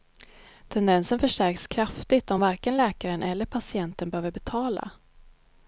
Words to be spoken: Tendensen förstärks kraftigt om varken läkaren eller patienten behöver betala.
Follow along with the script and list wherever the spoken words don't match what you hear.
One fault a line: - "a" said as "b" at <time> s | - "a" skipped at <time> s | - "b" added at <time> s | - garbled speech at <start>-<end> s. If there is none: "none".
none